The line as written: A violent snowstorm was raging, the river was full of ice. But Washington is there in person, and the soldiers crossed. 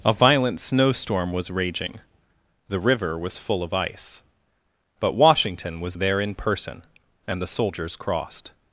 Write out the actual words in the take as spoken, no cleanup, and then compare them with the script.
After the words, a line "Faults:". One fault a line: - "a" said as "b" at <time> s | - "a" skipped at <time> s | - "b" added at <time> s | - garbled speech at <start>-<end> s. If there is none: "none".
A violent snowstorm was raging, the river was full of ice. But Washington was there in person, and the soldiers crossed.
Faults:
- "is" said as "was" at 5.8 s